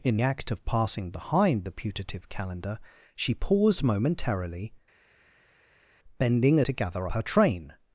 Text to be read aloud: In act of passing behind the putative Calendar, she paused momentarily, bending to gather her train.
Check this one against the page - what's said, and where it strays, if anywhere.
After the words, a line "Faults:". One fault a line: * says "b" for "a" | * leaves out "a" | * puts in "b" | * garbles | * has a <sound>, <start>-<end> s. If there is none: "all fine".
In act of passing behind the putative Calendar, she paused momentarily, bending to gather her train.
Faults:
all fine